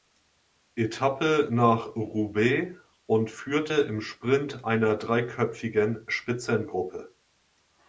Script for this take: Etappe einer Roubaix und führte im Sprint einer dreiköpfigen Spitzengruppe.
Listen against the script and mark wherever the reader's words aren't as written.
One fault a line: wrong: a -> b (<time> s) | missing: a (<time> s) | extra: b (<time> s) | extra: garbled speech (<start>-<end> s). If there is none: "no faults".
wrong: einer -> nach (1.5 s)